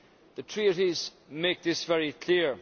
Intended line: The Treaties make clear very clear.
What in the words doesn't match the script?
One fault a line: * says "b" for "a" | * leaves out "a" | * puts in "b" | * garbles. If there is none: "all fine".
* says "this" for "clear"